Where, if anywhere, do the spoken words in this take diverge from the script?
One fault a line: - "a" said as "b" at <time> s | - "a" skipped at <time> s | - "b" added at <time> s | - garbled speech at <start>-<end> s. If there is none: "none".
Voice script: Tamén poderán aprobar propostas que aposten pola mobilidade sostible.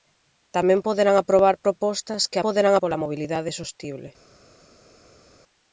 - "aposten" said as "poderán" at 2.5 s